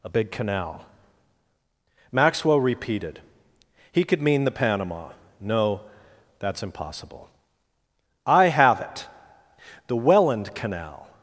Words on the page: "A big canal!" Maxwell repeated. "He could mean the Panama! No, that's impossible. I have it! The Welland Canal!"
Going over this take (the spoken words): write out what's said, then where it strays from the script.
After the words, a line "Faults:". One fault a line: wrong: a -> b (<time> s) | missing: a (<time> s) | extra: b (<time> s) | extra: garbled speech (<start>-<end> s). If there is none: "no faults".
"A big canal!" Maxwell repeated. "He could mean the Panama! No, that's impossible. I have it! The Welland Canal!"
Faults:
no faults